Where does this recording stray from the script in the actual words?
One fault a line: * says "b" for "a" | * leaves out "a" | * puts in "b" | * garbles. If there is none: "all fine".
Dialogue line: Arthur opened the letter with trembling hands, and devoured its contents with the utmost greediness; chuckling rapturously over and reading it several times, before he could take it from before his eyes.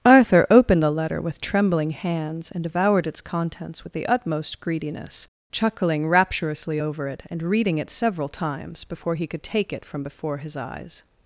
* puts in "it"